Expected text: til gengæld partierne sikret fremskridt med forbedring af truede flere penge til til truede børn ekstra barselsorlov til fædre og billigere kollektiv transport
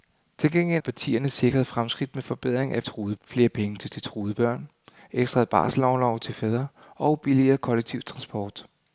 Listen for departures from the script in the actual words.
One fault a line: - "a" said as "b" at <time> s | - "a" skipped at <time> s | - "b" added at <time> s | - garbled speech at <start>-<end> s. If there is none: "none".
none